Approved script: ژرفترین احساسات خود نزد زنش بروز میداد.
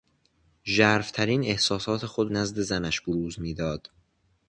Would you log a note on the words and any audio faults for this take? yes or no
no